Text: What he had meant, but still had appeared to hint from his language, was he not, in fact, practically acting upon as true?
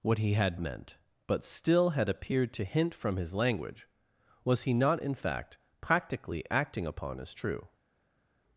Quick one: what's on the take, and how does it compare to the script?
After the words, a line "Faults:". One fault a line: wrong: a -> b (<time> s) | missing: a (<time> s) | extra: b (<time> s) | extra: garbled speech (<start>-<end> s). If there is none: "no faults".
What he had meant, but still had appeared to hint from his language, was he not, in fact, practically acting upon as true?
Faults:
no faults